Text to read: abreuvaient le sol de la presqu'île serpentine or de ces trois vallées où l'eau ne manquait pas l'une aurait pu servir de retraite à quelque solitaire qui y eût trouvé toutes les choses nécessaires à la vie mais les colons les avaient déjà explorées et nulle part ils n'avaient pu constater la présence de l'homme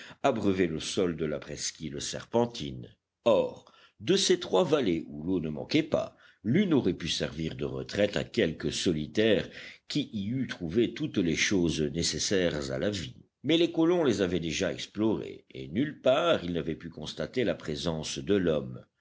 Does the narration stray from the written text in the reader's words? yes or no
no